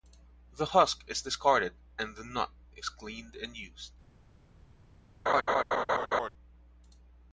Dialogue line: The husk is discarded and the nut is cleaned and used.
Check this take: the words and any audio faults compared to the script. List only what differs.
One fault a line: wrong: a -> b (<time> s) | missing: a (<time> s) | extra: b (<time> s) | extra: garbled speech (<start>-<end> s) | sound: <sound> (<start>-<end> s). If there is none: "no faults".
sound: laugh (5.3-6.3 s)